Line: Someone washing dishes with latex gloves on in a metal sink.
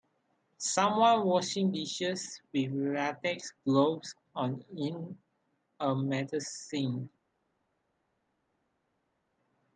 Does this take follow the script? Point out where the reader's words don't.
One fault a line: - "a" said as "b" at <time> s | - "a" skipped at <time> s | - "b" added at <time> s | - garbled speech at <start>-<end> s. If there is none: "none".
none